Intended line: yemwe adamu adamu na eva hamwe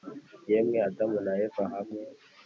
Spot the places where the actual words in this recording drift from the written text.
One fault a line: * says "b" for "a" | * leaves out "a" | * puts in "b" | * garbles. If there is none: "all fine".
* leaves out "adamu"